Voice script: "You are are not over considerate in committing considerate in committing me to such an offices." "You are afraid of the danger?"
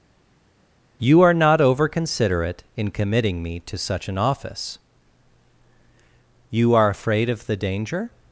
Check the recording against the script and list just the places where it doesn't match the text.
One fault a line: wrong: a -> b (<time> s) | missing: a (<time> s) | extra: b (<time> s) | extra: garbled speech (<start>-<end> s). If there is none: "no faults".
missing: are (1.3 s)
missing: considerate in committing (3.4 s)
wrong: offices -> office (4.2 s)